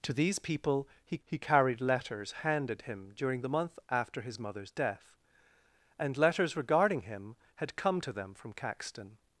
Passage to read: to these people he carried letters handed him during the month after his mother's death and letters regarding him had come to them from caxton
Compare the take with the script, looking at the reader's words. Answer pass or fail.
fail